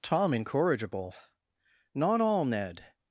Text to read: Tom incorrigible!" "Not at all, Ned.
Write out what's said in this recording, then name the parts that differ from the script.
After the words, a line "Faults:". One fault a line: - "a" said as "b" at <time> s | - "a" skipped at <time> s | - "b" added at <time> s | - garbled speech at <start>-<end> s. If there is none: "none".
Tom incorrigible!" "Not all, Ned.
Faults:
- "at" skipped at 2.2 s